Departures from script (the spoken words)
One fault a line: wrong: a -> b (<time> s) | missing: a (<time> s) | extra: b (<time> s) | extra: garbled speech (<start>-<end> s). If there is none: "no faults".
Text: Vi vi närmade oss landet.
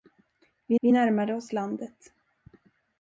no faults